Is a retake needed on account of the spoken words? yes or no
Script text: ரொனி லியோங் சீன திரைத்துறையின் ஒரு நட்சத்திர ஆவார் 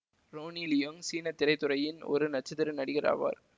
yes